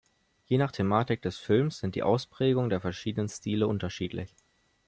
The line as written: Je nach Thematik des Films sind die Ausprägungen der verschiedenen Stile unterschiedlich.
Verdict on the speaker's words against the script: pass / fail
pass